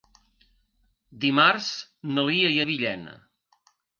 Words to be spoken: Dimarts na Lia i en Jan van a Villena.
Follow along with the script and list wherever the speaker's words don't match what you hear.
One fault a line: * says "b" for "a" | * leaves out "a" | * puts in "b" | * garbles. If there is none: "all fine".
* leaves out "en Jan van"